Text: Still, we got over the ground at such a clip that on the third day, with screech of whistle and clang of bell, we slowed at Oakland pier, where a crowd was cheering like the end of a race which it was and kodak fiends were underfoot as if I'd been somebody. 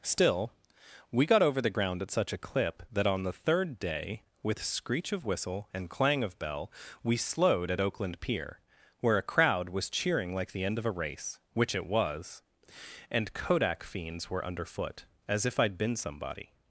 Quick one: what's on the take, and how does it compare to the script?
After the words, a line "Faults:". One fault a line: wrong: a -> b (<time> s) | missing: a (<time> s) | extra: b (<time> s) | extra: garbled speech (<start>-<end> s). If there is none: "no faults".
Still, we got over the ground at such a clip that on the third day, with screech of whistle and clang of bell, we slowed at Oakland pier, where a crowd was cheering like the end of a race which it was and kodak fiends were underfoot as if I'd been somebody.
Faults:
no faults